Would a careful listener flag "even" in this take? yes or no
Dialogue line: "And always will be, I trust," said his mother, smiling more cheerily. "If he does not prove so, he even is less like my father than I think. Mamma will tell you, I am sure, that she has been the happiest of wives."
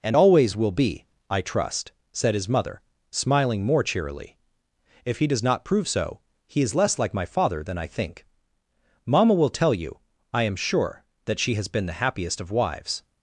yes